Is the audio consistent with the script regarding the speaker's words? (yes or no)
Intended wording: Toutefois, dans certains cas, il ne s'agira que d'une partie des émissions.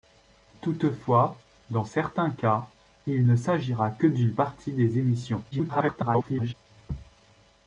no